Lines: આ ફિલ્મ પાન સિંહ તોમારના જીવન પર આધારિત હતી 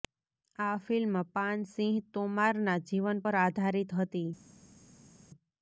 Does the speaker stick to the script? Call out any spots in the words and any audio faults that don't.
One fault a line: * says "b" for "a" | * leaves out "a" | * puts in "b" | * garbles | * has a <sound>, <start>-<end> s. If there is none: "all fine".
all fine